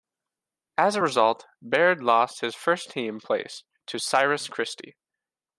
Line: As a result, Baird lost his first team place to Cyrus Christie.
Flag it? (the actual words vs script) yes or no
no